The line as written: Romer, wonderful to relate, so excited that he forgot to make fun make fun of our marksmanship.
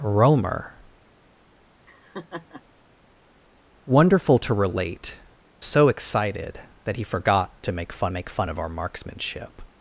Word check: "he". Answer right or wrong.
right